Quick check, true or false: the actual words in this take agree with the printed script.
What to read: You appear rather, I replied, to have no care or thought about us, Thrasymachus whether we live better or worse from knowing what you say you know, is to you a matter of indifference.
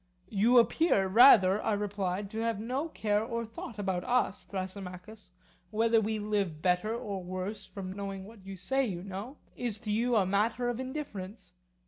true